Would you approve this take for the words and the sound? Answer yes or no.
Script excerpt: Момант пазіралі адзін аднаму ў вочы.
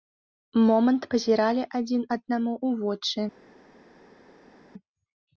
yes